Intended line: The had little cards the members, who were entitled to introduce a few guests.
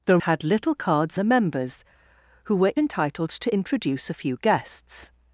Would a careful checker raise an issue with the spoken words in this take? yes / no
no